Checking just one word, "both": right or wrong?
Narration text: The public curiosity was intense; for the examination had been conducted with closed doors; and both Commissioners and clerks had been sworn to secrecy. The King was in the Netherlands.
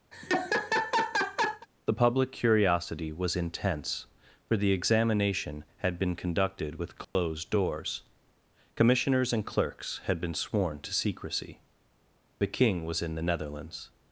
wrong